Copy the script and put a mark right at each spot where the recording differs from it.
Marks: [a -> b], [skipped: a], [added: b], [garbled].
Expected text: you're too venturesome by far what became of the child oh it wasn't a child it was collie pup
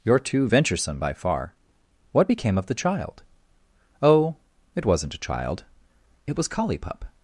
you're too venturesome by far what became of the child oh it wasn't a child it was collie pup